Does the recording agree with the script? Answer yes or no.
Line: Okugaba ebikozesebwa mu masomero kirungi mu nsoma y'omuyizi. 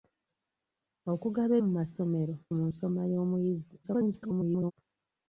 no